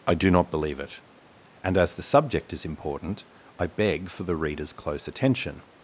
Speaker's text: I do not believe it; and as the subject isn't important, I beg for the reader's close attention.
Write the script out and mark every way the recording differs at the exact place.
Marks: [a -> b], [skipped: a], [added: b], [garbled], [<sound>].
I do not believe it; and as the subject [isn't -> is] important, I beg for the reader's close attention.